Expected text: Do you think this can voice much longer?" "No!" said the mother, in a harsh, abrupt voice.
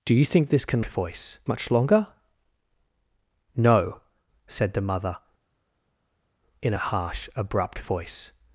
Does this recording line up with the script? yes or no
yes